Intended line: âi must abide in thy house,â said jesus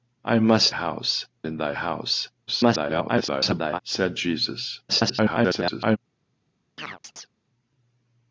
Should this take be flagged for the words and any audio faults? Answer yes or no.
yes